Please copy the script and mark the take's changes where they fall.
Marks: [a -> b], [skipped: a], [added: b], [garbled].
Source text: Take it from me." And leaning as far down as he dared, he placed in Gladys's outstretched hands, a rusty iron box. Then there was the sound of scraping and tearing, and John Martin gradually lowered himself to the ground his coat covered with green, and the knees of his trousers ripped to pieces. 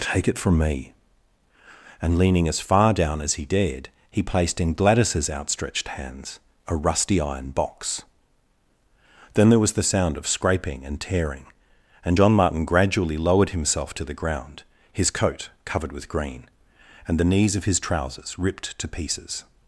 Take it from me." And leaning as far down as he dared, he placed in Gladys's outstretched hands, a rusty iron box. Then there was the sound of scraping and tearing, and John Martin gradually lowered himself to the ground his coat covered with green, and the knees of his trousers ripped to pieces.